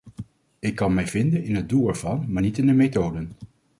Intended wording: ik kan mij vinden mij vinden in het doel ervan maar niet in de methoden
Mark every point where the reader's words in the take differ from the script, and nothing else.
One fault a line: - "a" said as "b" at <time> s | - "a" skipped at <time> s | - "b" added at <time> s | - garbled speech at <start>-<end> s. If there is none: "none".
- "mij vinden" skipped at 1.4 s